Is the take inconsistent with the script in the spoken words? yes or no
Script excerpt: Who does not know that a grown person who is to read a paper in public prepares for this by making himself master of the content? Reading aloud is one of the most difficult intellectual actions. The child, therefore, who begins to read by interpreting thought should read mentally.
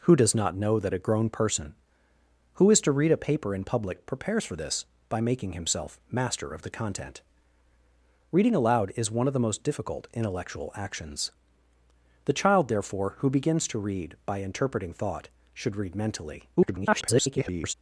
yes